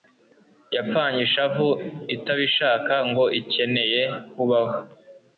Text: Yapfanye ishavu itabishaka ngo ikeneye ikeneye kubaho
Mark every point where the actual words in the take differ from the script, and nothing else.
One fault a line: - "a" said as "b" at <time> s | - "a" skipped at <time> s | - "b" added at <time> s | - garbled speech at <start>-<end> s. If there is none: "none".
- "ikeneye" skipped at 4.0 s